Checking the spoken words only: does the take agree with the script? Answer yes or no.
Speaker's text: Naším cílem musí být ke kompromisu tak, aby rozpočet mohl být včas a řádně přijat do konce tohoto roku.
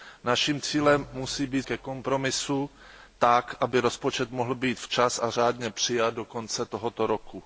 yes